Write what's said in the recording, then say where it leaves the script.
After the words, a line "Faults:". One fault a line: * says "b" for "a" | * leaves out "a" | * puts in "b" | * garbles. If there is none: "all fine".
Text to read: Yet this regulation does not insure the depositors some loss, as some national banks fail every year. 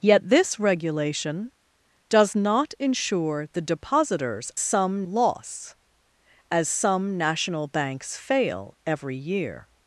Yet this regulation does not insure the depositors some loss, as some national banks fail every year.
Faults:
all fine